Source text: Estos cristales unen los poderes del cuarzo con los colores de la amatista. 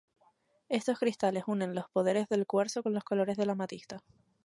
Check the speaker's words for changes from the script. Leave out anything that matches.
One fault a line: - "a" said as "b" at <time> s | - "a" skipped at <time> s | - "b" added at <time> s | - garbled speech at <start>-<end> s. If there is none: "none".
none